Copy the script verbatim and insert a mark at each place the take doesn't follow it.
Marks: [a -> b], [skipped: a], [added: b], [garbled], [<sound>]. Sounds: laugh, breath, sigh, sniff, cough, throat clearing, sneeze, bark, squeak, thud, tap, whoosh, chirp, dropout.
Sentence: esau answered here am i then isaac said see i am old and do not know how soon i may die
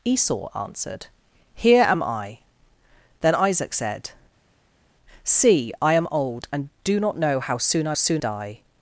esau answered here am i then isaac said see i am old and do not know how soon i [may -> soon] die